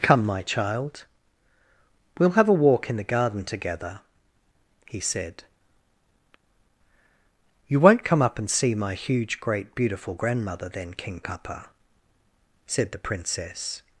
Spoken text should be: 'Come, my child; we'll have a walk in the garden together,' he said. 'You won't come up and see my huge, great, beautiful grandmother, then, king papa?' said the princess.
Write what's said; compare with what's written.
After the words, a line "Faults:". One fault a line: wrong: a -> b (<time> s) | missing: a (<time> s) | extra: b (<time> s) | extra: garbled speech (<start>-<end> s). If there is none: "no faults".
'Come, my child; we'll have a walk in the garden together,' he said. 'You won't come up and see my huge, great, beautiful grandmother, then, king papa?' said the princess.
Faults:
no faults